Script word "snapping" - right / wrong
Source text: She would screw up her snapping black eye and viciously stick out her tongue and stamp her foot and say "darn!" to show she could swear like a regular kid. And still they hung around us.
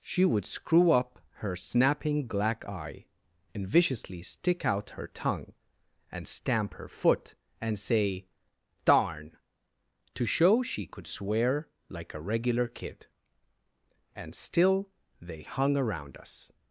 right